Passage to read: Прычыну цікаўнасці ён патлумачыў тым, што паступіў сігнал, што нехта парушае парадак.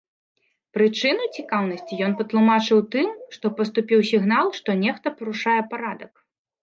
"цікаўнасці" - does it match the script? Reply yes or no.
yes